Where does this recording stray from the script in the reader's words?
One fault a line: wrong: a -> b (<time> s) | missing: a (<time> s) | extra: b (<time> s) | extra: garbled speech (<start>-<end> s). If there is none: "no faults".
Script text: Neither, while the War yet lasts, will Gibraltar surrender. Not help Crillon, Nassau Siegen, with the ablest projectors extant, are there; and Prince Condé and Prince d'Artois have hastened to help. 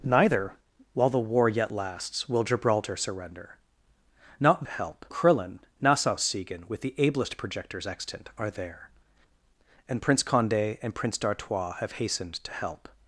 no faults